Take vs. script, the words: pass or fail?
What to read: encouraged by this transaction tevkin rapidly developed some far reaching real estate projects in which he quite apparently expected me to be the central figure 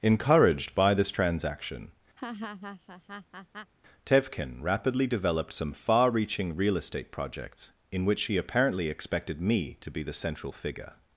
fail